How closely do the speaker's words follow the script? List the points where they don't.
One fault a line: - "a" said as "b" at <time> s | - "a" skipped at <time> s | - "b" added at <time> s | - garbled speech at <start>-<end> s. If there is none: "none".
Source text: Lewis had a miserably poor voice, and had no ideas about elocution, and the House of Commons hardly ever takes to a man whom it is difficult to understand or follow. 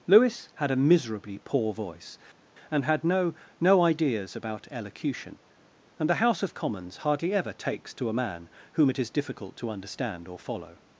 - "no" added at 3.6 s